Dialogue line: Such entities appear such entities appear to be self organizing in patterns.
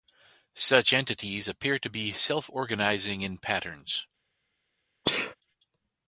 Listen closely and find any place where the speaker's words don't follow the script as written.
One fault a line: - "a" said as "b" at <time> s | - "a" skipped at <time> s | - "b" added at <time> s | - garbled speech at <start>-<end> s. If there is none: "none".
- "such entities appear" skipped at 1.8 s